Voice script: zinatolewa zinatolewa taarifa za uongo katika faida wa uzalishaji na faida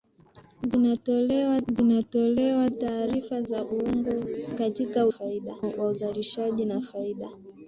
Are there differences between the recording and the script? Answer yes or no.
no